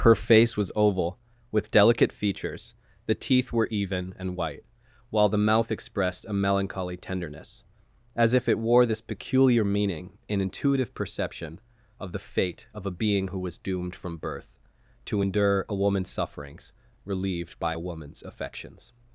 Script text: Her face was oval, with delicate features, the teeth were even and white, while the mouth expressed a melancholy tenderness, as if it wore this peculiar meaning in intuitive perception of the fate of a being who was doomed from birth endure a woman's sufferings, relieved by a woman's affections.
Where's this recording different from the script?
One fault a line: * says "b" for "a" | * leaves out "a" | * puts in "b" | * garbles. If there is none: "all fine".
* puts in "to"